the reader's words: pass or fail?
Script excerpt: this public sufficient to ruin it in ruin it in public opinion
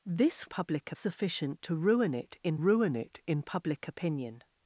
pass